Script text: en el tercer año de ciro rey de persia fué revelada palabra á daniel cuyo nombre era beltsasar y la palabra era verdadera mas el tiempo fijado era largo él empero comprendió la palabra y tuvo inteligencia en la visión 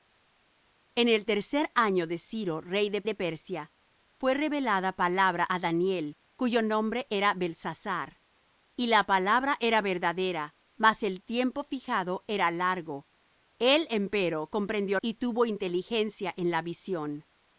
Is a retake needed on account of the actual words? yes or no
yes